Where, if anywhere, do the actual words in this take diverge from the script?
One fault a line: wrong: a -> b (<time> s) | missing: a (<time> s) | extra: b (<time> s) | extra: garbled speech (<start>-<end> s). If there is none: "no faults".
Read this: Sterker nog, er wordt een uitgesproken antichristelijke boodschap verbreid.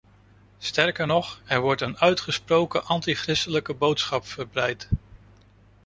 no faults